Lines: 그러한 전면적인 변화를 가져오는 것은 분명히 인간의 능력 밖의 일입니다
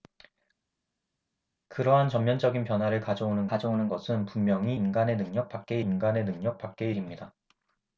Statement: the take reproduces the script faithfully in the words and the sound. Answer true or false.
false